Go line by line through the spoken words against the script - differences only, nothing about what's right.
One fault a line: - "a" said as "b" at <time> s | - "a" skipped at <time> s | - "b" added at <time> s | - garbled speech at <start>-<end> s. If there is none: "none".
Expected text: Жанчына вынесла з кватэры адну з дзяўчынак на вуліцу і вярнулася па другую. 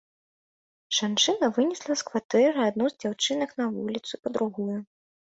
- "і вярнулася" skipped at 4.1 s